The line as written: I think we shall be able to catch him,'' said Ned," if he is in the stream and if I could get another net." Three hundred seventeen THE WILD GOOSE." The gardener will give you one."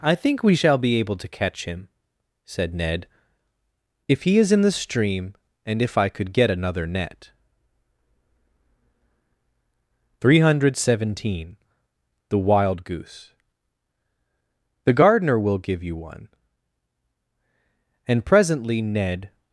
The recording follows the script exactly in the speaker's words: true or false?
false